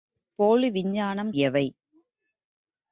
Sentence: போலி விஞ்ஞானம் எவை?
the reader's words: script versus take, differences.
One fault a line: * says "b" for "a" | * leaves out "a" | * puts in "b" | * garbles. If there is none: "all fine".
all fine